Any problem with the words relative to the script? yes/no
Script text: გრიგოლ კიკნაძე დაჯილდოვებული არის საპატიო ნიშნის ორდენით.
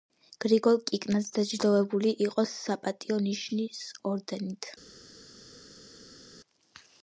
yes